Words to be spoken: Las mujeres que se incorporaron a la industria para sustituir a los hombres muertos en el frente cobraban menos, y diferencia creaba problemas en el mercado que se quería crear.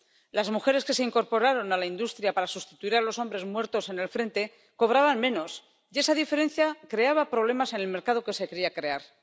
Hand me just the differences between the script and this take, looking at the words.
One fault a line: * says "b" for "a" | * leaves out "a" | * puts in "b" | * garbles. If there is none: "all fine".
* puts in "esa"